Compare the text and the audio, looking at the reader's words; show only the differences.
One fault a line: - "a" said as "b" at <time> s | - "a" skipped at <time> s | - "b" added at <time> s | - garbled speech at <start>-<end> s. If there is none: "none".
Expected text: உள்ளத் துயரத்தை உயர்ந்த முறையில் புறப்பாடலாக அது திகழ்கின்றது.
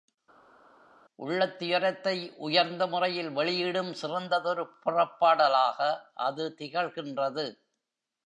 - "வெளியிடும் சிறந்ததொரு" added at 3.3 s